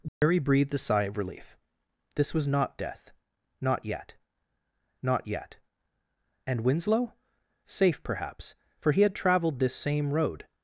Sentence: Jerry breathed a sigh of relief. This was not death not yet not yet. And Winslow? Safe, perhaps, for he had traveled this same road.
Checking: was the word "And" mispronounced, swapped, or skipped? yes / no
no